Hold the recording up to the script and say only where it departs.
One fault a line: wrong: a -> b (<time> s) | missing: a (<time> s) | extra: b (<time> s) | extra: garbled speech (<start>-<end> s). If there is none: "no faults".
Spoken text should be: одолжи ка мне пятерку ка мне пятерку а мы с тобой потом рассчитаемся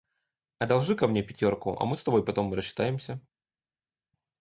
missing: ка мне пятерку (1.8 s)